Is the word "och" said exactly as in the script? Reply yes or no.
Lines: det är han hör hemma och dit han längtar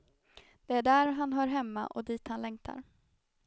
yes